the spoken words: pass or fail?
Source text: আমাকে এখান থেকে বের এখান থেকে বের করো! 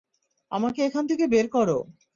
fail